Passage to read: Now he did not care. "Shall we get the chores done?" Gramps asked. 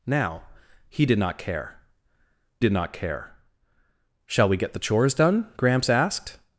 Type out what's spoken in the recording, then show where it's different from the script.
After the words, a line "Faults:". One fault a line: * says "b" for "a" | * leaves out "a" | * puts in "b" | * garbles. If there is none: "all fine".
Now he did not care did not care. "Shall we get the chores done?" Gramps asked.
Faults:
* puts in "did not care"